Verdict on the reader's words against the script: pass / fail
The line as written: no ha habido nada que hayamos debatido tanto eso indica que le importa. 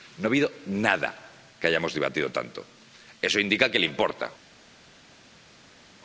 pass